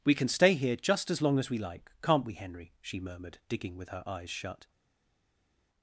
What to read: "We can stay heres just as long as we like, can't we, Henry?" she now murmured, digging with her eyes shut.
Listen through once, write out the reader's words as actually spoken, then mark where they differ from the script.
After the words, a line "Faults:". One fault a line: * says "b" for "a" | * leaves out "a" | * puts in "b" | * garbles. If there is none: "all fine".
"We can stay here just as long as we like, can't we, Henry?" she murmured, digging with her eyes shut.
Faults:
* says "here" for "heres"
* leaves out "now"